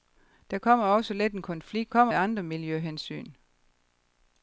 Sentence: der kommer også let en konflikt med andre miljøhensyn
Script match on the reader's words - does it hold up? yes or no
no